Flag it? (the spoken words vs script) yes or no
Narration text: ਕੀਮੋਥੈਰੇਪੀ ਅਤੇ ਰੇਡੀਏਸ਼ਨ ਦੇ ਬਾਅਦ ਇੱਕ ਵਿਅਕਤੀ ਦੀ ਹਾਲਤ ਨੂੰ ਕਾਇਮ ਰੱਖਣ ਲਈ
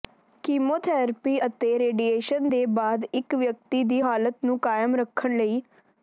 no